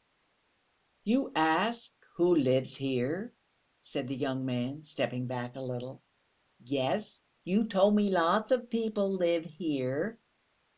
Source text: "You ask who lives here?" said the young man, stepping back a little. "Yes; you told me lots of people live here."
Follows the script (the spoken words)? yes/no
yes